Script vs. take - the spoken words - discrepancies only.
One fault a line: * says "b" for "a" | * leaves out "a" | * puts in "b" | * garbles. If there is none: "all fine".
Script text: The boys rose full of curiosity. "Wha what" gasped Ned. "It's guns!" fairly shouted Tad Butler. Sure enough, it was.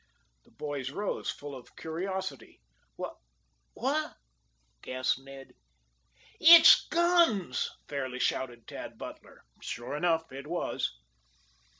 all fine